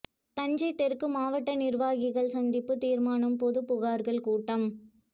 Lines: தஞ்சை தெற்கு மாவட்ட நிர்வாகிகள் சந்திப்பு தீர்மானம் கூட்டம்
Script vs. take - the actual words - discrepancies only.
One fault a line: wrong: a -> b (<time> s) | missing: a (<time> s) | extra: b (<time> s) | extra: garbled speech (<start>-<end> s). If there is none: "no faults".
extra: பொது புகார்கள் (3.4 s)